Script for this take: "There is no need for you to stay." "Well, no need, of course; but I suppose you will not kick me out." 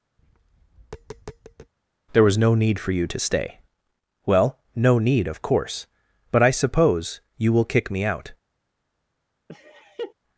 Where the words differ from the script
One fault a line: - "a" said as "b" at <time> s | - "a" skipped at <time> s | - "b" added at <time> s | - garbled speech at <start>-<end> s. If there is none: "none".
- "is" said as "was" at 2.2 s
- "not" skipped at 7.7 s